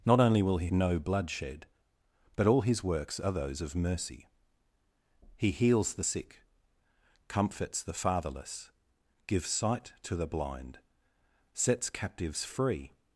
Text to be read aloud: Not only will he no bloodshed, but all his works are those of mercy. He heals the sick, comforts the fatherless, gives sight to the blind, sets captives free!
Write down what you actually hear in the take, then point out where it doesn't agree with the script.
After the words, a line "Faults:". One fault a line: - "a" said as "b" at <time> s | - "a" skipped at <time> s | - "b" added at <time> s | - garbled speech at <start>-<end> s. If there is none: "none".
Not only will he no bloodshed, but all his works are those of mercy. He heals the sick, comforts the fatherless, gives sight to the blind, sets captives free!
Faults:
none